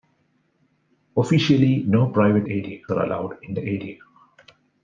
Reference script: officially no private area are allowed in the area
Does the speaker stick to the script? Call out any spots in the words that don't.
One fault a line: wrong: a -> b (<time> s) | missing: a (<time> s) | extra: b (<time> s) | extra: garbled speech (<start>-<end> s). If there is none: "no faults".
no faults